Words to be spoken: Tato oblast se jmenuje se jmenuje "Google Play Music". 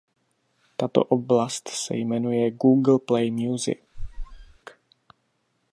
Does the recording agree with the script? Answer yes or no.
no